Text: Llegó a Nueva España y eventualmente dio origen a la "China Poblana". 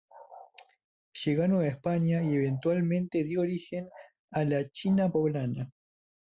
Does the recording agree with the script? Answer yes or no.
yes